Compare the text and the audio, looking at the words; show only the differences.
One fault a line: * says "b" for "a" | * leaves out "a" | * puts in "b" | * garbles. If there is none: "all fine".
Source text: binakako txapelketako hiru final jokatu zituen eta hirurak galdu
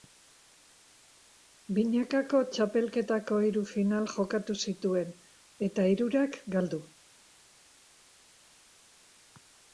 all fine